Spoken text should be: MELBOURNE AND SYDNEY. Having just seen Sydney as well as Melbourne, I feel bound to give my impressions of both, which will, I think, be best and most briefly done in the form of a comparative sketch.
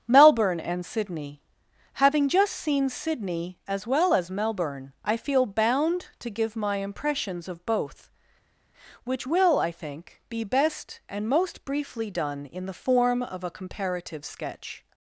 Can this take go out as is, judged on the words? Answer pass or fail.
pass